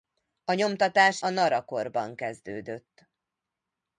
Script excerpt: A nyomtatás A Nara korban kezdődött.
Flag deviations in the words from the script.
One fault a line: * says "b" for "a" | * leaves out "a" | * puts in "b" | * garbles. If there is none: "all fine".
all fine